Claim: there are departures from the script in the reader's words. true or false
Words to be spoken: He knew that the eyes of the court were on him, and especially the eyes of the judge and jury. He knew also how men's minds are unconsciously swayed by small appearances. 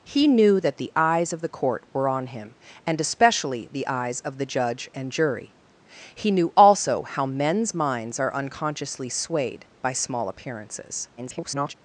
true